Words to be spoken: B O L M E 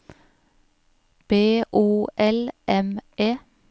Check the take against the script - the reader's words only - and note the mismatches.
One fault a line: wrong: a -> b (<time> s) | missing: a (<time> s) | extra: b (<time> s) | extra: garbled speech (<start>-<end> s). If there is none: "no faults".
no faults